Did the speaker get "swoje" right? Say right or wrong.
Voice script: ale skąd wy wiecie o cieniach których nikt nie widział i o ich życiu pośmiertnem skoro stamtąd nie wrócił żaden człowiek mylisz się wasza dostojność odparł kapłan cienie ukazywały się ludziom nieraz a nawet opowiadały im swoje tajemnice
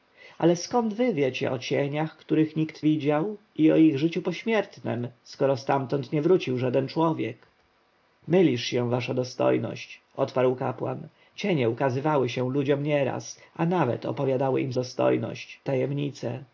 wrong